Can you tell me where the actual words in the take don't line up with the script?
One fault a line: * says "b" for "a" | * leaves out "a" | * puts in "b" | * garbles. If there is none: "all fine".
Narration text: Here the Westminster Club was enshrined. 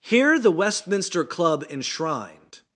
* leaves out "was"